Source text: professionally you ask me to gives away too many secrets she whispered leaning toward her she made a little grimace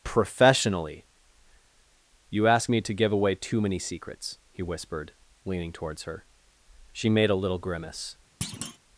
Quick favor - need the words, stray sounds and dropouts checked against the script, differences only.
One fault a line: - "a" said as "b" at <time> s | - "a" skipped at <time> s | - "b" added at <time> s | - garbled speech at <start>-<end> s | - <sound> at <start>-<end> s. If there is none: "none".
- "gives" said as "give" at 2.9 s
- "she" said as "he" at 4.5 s
- "toward" said as "towards" at 5.7 s
- thud at 8.4-8.8 s